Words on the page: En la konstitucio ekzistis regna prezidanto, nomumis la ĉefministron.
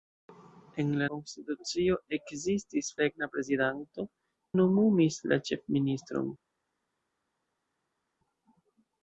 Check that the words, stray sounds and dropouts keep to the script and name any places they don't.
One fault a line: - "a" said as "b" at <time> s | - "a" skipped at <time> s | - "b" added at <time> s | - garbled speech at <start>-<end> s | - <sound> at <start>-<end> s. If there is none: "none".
none